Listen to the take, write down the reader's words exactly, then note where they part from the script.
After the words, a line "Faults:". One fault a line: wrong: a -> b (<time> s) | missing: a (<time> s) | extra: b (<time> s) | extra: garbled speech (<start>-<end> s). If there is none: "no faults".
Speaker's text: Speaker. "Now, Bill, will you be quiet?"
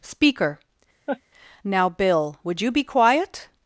Speaker. "Now, Bill, would you be quiet?"
Faults:
wrong: will -> would (2.4 s)